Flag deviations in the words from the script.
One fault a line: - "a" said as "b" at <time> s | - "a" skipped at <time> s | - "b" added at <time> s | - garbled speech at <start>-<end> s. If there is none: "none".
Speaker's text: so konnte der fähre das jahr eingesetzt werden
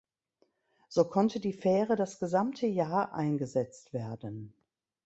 - "der" said as "die" at 1.4 s
- "gesamte" added at 2.2 s